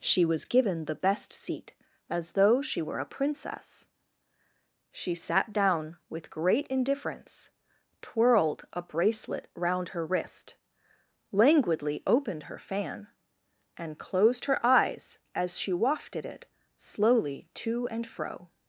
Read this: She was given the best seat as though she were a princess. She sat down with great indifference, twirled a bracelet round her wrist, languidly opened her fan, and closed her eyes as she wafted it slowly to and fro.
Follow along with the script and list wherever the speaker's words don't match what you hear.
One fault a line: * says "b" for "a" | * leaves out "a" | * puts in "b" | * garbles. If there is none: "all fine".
all fine